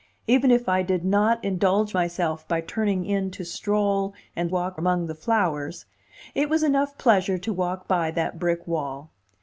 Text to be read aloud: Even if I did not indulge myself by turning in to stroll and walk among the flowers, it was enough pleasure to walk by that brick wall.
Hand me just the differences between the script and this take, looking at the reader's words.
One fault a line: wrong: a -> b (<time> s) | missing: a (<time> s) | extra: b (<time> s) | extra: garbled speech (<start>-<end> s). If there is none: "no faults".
no faults